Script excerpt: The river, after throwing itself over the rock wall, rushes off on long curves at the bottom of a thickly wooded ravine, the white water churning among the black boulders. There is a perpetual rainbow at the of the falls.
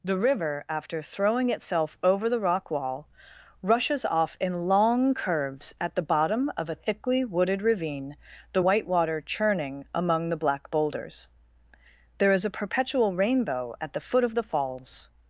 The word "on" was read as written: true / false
false